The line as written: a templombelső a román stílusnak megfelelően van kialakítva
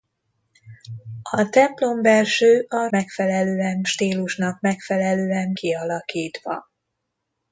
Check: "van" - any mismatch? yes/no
yes